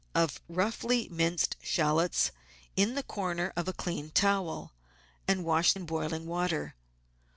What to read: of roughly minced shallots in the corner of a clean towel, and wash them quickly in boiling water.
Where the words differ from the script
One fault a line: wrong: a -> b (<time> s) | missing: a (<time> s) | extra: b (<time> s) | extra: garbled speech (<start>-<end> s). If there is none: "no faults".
missing: them quickly (5.7 s)